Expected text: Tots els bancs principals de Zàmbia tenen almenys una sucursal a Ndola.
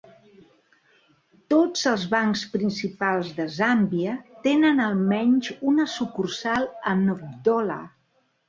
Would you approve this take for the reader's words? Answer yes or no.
yes